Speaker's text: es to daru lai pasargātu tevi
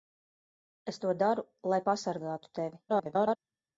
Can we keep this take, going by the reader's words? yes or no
no